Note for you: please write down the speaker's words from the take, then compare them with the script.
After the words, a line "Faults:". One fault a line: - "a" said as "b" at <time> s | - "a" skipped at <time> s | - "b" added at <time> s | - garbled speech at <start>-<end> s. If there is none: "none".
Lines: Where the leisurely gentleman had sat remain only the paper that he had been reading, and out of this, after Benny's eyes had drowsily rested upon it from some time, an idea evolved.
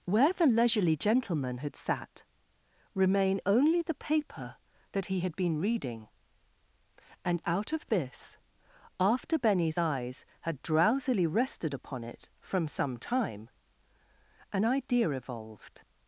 Where the leisurely gentleman had sat remain only the paper that he had been reading, and out of this, after Benny's eyes had drowsily rested upon it from some time, an idea evolved.
Faults:
none